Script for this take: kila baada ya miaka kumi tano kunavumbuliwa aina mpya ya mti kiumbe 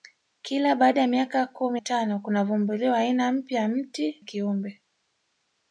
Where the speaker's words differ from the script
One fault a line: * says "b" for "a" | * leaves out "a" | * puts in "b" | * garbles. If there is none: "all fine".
all fine